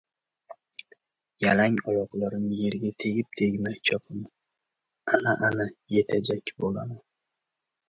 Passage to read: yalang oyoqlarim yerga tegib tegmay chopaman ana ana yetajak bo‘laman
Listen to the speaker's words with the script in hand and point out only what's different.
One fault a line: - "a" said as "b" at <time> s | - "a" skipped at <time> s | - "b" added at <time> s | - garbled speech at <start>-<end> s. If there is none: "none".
none